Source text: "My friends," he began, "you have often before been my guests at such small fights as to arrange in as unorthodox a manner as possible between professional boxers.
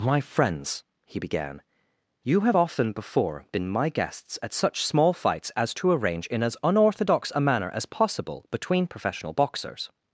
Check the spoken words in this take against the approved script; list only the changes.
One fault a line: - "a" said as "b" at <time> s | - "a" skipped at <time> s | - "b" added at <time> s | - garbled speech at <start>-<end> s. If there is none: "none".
none